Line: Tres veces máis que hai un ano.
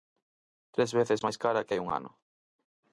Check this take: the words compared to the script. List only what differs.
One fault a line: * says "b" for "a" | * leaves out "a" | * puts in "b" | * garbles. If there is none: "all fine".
* puts in "cara"